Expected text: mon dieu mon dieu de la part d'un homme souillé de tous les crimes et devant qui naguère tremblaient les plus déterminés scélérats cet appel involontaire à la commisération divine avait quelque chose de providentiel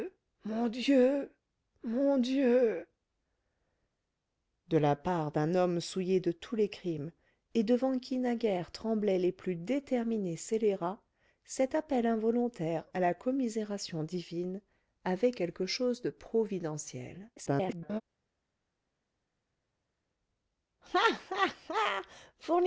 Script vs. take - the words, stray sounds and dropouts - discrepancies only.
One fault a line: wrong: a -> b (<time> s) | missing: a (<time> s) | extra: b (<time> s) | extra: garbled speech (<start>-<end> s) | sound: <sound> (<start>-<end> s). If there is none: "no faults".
extra: garbled speech (17.4-18.0 s)